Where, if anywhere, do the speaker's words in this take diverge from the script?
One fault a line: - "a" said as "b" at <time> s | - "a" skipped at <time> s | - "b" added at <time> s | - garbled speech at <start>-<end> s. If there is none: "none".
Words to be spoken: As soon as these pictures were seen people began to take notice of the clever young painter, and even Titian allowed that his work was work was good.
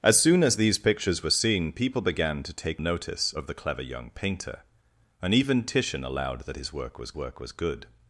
none